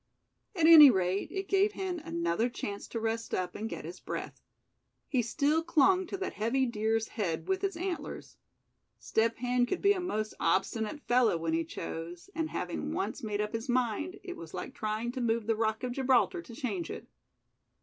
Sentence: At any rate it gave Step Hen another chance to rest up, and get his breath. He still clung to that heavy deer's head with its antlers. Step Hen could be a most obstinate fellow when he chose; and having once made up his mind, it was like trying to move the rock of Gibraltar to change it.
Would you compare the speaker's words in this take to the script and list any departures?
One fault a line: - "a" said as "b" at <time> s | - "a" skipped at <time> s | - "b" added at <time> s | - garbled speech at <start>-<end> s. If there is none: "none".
- "Step" skipped at 1.7 s